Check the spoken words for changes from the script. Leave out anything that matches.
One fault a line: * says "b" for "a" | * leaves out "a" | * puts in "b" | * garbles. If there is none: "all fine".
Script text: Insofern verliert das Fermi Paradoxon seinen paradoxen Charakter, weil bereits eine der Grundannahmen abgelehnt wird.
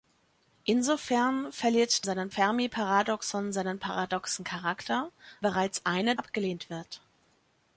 * says "seinen" for "das"
* leaves out "weil"
* leaves out "der Grundannahmen"